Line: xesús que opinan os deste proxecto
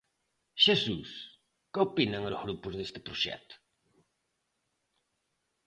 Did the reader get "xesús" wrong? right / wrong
right